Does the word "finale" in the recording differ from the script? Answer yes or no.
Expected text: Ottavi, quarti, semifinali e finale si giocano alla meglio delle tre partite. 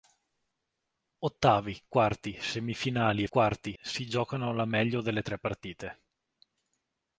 yes